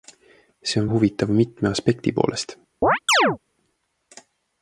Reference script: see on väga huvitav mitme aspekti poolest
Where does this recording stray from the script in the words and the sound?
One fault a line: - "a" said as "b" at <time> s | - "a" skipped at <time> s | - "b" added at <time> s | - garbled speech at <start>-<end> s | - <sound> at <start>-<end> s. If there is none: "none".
- "väga" skipped at 0.9 s
- chirp at 2.8-3.4 s